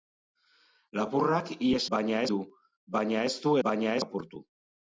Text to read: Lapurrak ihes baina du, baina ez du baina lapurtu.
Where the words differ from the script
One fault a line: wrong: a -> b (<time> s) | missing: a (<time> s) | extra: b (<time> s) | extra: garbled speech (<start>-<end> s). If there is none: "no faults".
no faults